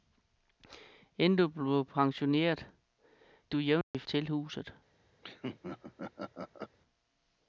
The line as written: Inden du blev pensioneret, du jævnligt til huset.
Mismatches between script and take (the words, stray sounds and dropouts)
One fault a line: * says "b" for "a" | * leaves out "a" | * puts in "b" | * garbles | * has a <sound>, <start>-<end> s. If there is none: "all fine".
* has a dropout, 3.8-3.9 s
* has a laugh, 5.2-6.8 s